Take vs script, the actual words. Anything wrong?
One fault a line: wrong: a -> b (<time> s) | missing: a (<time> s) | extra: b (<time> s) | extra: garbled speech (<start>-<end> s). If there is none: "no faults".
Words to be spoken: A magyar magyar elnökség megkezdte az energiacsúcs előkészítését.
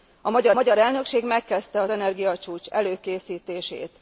no faults